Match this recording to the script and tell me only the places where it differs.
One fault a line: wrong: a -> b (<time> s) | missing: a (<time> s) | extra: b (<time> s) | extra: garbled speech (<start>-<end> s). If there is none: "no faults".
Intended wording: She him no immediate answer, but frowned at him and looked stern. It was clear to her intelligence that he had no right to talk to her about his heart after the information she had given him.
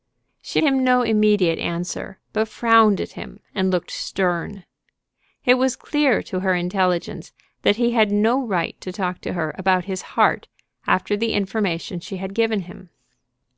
no faults